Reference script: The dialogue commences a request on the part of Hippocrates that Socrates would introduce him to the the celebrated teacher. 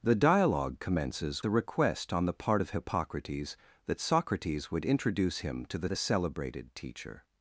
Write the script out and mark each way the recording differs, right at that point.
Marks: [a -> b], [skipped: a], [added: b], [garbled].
The dialogue commences a request on the part of Hippocrates that Socrates would introduce him to the the celebrated teacher.